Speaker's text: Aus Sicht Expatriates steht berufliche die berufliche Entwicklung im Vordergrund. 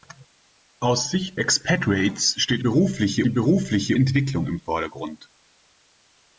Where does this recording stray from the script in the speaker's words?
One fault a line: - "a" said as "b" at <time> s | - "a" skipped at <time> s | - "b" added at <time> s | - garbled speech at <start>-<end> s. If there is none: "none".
none